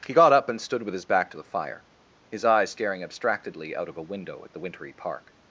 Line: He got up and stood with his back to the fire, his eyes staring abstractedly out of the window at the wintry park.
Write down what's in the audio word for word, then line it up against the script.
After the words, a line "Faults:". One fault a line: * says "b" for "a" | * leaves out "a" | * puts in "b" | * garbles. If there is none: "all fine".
He got up and stood with his back to the fire, his eyes staring abstractedly out of a window at the wintry park.
Faults:
* says "a" for "the"